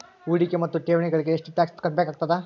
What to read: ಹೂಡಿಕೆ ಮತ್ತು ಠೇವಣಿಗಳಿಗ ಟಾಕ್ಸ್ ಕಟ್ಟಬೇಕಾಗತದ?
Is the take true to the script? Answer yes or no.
no